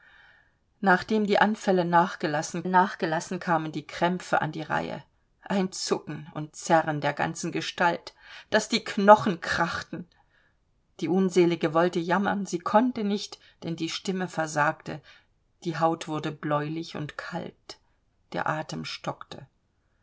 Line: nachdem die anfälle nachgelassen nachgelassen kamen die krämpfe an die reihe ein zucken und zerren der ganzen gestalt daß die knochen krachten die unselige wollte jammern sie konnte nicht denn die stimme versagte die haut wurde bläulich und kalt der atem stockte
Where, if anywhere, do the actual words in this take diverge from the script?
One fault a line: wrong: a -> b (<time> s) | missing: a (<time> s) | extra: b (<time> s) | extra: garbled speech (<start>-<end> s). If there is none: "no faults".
no faults